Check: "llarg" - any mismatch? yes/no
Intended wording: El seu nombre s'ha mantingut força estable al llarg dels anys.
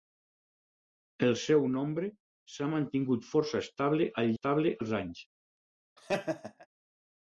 yes